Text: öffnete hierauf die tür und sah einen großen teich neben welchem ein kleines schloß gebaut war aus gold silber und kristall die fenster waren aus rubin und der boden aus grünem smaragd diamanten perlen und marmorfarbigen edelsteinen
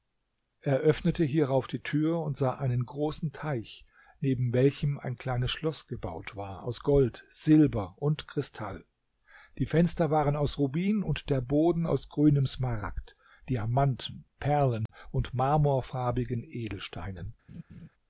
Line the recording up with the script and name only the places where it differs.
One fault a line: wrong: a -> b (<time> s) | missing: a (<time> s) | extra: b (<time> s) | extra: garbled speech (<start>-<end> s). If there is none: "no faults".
no faults